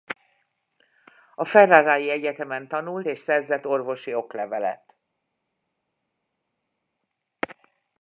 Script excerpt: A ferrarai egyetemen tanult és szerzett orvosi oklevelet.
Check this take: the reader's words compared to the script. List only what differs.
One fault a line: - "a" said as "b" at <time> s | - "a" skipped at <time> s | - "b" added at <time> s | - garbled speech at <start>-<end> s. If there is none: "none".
none